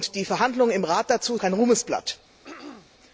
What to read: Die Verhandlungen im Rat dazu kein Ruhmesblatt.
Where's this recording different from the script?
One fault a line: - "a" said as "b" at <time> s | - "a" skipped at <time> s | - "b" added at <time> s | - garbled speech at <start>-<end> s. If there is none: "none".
none